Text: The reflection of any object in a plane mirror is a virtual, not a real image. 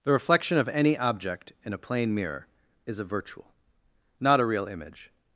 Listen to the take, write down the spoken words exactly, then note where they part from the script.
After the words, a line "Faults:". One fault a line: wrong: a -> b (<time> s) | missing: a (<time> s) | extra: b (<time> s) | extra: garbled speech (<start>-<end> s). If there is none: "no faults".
The reflection of any object in a plane mirror is a virtual, not a real image.
Faults:
no faults